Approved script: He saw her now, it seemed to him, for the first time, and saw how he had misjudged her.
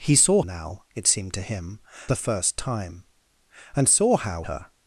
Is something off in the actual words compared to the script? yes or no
yes